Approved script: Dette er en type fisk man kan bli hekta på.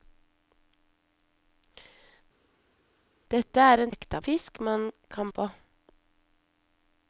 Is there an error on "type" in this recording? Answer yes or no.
yes